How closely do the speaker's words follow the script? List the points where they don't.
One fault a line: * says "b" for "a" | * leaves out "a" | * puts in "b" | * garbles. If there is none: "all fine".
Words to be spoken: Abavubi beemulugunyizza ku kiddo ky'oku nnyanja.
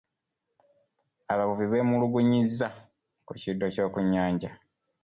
all fine